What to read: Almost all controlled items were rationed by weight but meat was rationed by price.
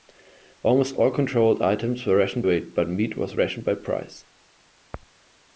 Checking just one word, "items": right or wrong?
right